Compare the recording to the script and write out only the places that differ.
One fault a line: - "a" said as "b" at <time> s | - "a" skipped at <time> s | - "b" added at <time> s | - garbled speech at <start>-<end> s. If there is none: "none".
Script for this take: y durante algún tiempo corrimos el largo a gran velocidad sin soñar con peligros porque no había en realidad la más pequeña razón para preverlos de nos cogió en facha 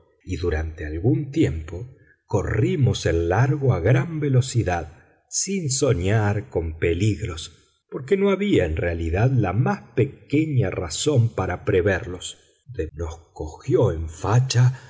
none